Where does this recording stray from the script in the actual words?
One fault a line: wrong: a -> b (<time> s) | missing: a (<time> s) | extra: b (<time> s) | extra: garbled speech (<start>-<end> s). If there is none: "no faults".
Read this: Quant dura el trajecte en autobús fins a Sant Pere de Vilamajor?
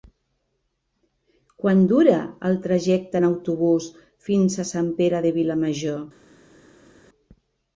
no faults